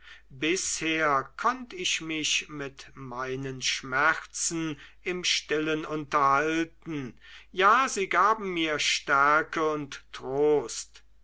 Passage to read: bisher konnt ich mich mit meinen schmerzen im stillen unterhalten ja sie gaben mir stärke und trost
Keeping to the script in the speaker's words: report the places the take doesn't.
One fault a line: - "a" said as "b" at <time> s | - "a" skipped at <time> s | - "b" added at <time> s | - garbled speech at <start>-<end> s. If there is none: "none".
none